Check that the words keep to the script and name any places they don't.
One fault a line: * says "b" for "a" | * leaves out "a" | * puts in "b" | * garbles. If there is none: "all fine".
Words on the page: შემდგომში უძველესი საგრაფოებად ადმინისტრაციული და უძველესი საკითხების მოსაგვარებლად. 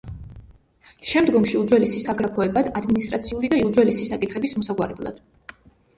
all fine